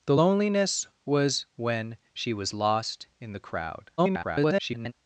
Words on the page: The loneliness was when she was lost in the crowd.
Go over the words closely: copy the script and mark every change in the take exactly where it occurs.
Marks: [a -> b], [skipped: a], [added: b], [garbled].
The loneliness was when she was lost in the crowd. [garbled]